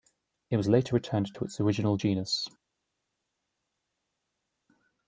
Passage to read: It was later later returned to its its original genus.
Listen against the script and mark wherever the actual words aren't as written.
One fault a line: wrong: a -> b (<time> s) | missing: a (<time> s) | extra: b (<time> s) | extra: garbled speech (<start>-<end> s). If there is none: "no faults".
missing: later (0.9 s)
missing: its (1.6 s)